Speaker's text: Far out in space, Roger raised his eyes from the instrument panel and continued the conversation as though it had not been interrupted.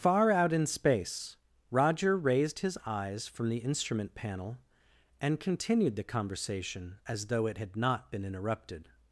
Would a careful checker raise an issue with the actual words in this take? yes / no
no